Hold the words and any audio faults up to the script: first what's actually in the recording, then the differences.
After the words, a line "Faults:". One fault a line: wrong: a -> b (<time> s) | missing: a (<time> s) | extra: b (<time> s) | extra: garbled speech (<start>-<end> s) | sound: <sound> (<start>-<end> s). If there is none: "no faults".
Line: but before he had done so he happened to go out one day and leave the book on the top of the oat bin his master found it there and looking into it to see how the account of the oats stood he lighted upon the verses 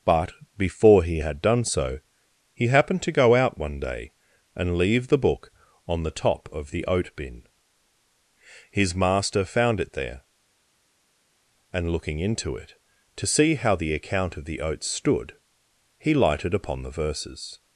but before he had done so he happened to go out one day and leave the book on the top of the oat bin his master found it there and looking into it to see how the account of the oats stood he lighted upon the verses
Faults:
no faults